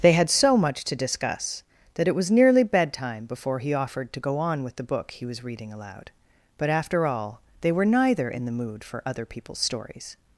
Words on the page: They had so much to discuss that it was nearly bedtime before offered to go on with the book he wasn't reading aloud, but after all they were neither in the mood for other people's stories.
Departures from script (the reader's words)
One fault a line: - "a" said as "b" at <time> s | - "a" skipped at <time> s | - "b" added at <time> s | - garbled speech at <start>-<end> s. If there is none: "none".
- "he" added at 3.6 s
- "wasn't" said as "was" at 5.3 s